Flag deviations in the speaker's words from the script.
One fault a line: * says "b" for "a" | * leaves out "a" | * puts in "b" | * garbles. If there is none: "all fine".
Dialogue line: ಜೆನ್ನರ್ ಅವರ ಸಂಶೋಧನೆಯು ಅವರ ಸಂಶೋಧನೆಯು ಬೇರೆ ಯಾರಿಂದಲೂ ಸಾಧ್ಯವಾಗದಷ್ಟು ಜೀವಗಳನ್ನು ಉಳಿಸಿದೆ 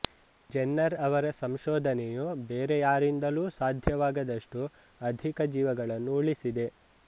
* leaves out "ಅವರ ಸಂಶೋಧನೆಯು"
* puts in "ಅಧಿಕ"